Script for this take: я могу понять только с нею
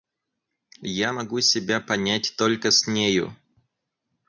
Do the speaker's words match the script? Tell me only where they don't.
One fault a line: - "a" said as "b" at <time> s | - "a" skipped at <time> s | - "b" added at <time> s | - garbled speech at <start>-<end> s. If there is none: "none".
- "себя" added at 1.4 s